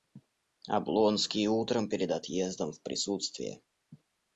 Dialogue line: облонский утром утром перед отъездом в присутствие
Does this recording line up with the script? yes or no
no